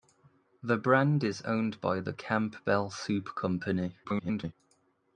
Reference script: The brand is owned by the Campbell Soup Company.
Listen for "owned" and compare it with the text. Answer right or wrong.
right